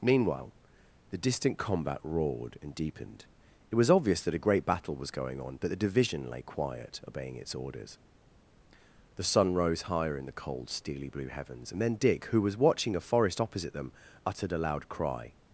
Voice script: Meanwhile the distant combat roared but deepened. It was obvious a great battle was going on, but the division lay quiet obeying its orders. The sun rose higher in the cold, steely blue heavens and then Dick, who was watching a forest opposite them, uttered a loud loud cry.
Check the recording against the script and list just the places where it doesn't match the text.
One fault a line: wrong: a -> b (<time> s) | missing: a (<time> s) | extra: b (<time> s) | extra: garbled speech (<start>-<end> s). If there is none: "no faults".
wrong: but -> and (2.6 s)
extra: that (4.2 s)
missing: loud (14.9 s)